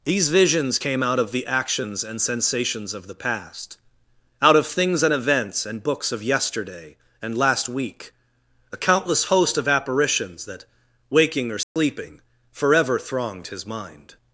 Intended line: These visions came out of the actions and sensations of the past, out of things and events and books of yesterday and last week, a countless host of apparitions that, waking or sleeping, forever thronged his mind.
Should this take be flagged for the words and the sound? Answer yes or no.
yes